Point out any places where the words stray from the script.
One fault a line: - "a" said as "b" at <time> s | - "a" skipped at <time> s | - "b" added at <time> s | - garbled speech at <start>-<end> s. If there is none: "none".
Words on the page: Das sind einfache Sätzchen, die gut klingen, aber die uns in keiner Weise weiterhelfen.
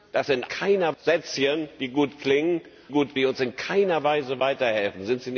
- "einfache" said as "keiner" at 0.5 s
- "aber" said as "gut" at 2.9 s